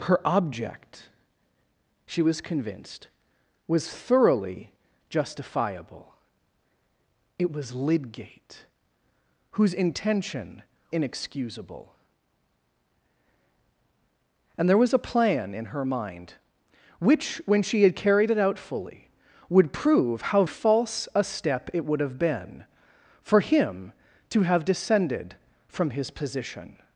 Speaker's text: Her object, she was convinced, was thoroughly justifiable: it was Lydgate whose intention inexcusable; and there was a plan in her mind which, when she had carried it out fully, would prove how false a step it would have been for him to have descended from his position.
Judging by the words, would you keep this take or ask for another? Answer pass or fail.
pass